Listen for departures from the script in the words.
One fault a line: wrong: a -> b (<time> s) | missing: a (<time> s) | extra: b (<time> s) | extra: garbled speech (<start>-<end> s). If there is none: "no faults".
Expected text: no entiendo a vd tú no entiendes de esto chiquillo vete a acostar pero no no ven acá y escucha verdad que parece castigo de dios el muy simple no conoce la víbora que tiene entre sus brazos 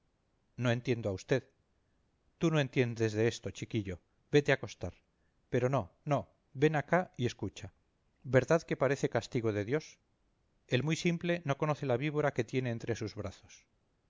no faults